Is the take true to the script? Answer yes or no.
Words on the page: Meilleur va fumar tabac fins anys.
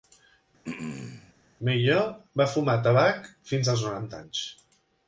no